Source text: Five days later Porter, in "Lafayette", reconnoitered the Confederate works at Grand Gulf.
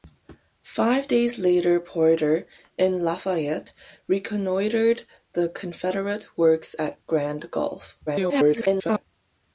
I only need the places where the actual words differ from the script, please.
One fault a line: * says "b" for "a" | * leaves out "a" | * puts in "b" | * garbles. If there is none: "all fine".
* garbles